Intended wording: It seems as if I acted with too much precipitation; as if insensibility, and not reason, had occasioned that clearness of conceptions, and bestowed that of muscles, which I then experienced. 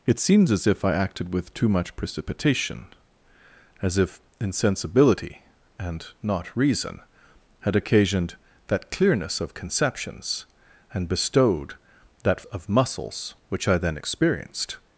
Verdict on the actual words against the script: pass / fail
pass